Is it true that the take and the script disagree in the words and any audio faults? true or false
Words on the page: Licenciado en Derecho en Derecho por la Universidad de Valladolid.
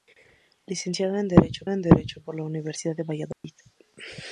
true